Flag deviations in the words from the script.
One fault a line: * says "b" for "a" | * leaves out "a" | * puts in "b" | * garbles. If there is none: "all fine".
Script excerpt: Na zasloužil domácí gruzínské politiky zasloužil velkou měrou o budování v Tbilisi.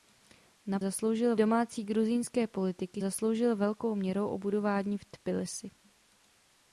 all fine